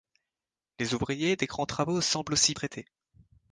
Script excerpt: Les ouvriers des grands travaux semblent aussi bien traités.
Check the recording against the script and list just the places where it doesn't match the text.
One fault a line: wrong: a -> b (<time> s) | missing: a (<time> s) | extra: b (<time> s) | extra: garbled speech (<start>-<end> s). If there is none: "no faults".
missing: bien (2.5 s)